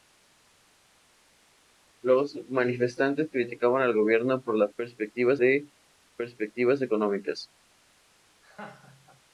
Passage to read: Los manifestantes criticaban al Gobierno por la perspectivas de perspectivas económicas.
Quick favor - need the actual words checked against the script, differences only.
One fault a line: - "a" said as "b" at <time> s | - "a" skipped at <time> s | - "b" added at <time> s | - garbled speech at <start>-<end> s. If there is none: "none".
none